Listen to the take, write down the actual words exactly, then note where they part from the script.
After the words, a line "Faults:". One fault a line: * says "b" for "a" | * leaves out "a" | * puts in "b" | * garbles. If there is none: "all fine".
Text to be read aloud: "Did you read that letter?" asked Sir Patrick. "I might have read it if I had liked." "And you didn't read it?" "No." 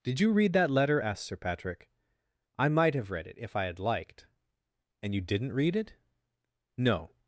"Did you read that letter?" asked Sir Patrick. "I might have read it if I had liked." "And you didn't read it?" "No."
Faults:
all fine